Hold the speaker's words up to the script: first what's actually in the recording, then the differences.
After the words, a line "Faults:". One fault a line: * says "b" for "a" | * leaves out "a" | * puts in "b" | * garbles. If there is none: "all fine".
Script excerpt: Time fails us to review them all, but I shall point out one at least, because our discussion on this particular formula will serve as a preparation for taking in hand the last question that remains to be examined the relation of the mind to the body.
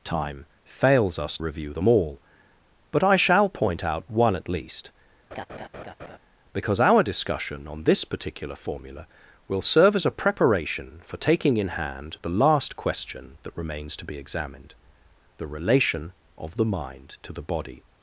Time fails us review them all, but I shall point out one at least, because our discussion on this particular formula will serve as a preparation for taking in hand the last question that remains to be examined the relation of the mind to the body.
Faults:
* leaves out "to"